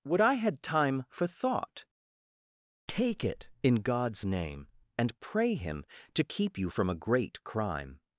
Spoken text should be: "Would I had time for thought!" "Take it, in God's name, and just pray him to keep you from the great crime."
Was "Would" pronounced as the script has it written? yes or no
yes